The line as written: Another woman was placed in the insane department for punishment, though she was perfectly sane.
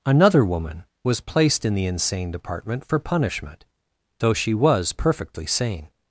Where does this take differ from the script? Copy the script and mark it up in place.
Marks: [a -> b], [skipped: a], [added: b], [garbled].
Another woman was placed in the insane department for punishment, though she was perfectly sane.